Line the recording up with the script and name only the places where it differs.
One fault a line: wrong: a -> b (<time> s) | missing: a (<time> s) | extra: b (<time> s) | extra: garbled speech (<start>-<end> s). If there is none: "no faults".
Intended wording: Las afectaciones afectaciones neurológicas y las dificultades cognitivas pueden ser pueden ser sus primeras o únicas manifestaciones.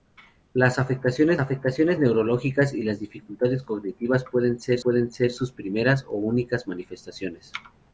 no faults